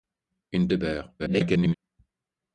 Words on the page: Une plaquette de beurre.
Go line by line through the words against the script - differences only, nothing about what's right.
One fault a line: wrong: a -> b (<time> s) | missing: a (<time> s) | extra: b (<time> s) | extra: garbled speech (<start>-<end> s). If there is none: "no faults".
missing: plaquette (0.7 s)
extra: garbled speech (1.2-1.7 s)